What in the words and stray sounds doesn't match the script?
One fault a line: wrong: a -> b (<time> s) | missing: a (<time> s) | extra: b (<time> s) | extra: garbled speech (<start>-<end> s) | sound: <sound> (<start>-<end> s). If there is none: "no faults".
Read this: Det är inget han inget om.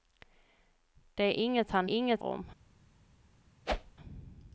sound: whoosh (3.7-4.0 s)